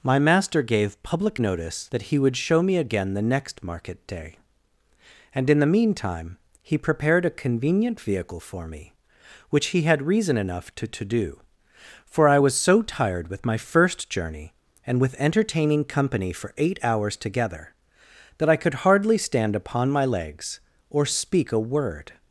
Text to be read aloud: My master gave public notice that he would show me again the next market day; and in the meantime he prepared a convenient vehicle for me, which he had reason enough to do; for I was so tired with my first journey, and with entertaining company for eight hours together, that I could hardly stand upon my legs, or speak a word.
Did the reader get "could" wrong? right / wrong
right